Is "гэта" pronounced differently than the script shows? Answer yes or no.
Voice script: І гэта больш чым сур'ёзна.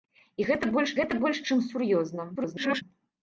no